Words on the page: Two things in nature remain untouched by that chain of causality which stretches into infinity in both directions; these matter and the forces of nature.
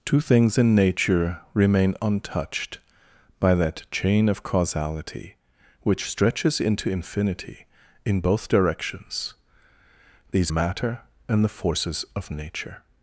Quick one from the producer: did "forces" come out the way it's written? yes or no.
yes